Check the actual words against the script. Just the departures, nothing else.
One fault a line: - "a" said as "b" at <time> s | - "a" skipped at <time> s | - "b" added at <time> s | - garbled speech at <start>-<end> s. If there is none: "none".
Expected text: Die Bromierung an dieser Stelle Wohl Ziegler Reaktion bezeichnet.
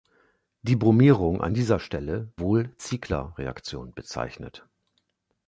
none